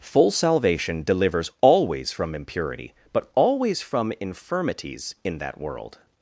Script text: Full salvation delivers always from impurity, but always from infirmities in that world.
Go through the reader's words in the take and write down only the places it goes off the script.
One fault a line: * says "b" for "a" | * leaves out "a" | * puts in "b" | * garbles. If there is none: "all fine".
all fine